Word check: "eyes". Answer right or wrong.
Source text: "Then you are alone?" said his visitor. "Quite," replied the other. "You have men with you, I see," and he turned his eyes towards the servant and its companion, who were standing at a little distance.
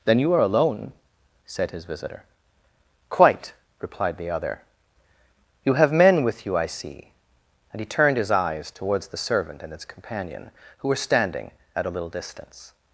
right